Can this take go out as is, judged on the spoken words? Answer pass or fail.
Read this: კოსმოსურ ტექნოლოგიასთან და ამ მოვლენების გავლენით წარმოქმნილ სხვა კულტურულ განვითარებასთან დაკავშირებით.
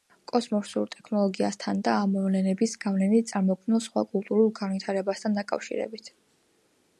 pass